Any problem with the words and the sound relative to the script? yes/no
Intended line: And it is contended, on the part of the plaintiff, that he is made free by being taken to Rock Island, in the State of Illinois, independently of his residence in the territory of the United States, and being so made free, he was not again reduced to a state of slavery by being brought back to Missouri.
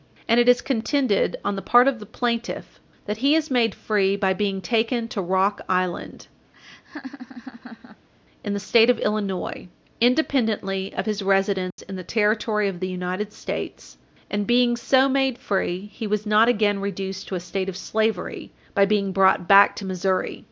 yes